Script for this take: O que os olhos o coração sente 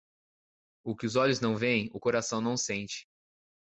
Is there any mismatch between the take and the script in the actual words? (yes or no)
yes